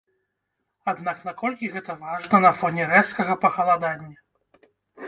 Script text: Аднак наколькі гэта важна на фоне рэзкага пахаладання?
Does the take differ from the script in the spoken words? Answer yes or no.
no